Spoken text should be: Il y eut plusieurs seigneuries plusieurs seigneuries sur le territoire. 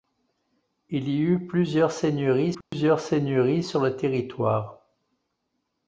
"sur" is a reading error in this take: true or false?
false